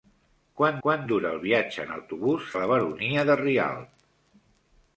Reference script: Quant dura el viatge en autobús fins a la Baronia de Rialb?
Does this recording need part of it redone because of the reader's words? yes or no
yes